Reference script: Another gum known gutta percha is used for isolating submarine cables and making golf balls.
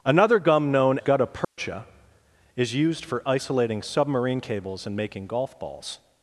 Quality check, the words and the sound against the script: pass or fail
fail